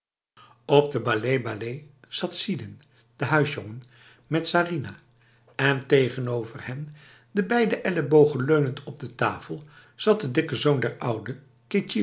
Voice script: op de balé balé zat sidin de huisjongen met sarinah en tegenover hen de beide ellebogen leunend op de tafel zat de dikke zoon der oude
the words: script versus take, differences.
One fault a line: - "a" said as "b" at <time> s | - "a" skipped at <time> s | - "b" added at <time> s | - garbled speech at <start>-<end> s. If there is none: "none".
none